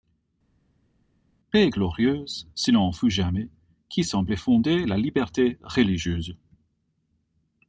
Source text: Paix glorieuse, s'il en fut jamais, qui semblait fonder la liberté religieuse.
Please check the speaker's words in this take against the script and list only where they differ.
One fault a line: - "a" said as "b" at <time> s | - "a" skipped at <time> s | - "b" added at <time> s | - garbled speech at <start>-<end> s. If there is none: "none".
none